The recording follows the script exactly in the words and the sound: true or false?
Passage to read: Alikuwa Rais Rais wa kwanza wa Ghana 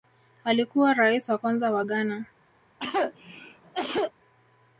false